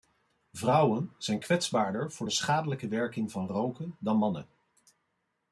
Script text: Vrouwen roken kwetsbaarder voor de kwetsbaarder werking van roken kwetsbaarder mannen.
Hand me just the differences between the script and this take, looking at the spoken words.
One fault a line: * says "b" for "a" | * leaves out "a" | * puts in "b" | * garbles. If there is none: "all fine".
* says "zijn" for "roken"
* says "schadelijke" for "kwetsbaarder"
* says "dan" for "kwetsbaarder"